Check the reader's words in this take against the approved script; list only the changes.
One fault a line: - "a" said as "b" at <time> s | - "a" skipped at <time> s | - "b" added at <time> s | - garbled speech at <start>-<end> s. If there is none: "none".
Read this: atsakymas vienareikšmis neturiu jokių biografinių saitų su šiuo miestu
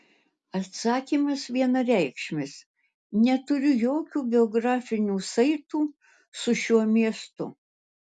none